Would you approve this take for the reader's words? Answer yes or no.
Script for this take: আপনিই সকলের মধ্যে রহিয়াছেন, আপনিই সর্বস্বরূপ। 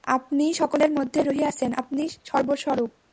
yes